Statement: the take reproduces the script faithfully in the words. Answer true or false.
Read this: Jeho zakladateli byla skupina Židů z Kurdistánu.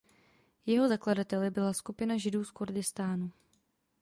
true